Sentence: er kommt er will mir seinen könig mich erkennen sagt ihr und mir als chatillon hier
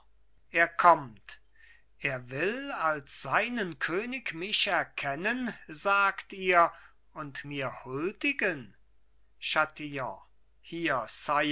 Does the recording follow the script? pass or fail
fail